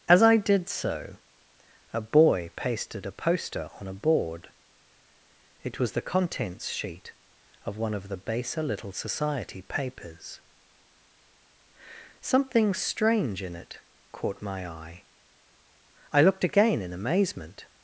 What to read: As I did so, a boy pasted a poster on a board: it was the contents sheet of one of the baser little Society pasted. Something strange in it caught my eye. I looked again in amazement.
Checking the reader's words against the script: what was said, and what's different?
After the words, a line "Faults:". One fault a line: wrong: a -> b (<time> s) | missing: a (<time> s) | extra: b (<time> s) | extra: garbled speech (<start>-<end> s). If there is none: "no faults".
As I did so, a boy pasted a poster on a board: it was the contents sheet of one of the baser little Society papers. Something strange in it caught my eye. I looked again in amazement.
Faults:
wrong: pasted -> papers (9.6 s)